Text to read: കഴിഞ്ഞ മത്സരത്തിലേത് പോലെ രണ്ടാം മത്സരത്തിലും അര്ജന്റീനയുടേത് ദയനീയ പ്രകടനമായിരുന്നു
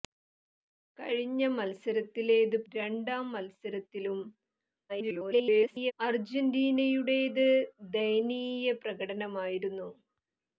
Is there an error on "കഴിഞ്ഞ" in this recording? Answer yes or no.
no